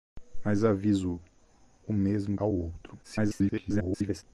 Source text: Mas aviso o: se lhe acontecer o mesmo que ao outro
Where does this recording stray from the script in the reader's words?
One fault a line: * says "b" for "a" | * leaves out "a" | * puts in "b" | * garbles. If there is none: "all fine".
* leaves out "se lhe acontecer"
* leaves out "que"
* garbles